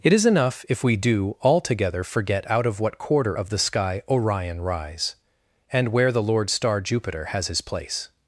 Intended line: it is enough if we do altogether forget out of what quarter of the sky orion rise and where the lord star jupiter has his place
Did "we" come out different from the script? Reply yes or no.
no